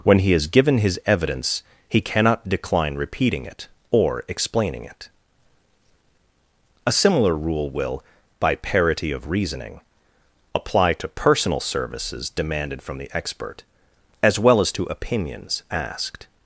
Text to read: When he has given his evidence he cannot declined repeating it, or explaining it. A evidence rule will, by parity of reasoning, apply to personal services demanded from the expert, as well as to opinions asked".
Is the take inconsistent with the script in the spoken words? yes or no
yes